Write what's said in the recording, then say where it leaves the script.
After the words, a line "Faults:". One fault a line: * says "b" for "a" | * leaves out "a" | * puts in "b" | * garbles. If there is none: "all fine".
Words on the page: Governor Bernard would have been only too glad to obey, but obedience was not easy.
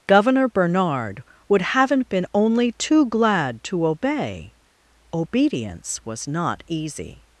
Governor Bernard would haven't been only too glad to obey, obedience was not easy.
Faults:
* says "haven't" for "have"
* leaves out "but"